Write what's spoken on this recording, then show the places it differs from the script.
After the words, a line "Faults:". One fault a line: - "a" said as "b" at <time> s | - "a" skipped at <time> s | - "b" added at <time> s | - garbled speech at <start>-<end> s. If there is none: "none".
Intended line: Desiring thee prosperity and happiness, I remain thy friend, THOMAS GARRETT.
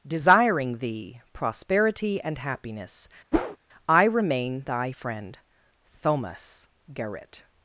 Desiring thee prosperity and happiness, I remain thy friend, THOMAS GARRETT.
Faults:
none